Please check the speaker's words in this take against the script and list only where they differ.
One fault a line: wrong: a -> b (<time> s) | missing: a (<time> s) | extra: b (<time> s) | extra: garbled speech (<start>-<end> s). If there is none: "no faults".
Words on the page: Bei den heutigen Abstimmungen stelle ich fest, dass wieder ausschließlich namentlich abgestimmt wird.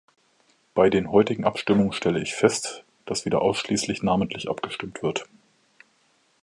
no faults